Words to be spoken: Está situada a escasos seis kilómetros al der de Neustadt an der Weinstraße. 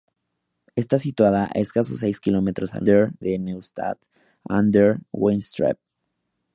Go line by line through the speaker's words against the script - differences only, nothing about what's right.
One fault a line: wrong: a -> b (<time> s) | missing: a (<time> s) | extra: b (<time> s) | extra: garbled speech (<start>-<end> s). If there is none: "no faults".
no faults